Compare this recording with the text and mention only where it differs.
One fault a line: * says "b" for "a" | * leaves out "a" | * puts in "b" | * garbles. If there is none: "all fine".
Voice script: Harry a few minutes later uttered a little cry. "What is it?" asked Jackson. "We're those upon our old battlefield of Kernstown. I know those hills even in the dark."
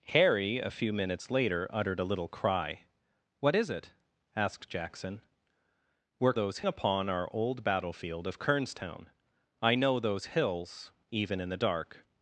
all fine